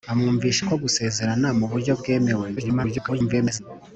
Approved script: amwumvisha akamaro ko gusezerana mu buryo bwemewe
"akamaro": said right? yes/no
no